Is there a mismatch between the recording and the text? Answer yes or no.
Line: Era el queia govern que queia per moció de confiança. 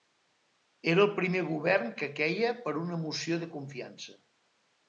yes